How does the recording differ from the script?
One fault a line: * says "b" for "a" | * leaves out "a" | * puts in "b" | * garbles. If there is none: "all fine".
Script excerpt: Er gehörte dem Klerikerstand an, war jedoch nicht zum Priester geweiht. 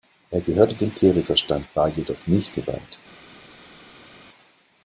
* leaves out "an"
* leaves out "zum Priester"